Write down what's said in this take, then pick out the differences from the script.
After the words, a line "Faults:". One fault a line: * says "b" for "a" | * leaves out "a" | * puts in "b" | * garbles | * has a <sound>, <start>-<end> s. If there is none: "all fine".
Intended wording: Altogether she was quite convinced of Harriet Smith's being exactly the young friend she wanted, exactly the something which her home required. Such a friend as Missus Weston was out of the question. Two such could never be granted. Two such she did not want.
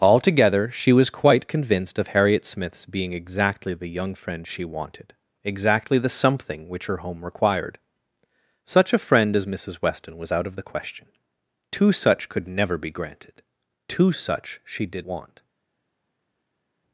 Altogether she was quite convinced of Harriet Smith's being exactly the young friend she wanted, exactly the something which her home required. Such a friend as Missus Weston was out of the question. Two such could never be granted. Two such she did want.
Faults:
* leaves out "not"